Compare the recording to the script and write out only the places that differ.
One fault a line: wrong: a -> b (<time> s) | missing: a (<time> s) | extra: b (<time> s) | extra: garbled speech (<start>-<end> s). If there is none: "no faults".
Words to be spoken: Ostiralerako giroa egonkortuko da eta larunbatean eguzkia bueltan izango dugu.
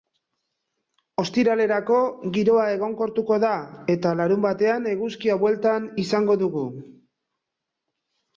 no faults